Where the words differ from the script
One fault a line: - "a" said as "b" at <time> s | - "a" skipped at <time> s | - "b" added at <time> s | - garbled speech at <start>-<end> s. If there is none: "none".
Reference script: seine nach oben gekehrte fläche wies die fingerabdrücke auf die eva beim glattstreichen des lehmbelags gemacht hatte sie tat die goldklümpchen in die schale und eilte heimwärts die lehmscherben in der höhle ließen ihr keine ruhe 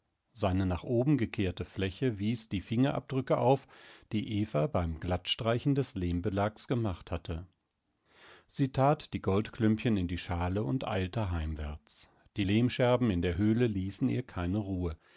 none